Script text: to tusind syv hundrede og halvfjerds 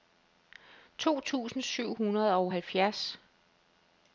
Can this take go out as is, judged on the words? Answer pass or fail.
pass